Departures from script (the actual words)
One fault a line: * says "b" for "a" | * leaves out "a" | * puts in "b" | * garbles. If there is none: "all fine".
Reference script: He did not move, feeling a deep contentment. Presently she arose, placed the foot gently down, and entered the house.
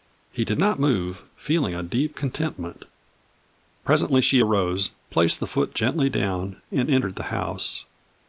all fine